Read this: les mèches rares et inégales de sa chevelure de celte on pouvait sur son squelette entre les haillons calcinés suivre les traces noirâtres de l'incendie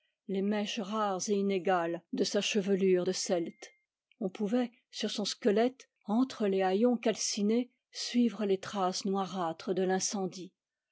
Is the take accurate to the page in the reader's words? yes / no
yes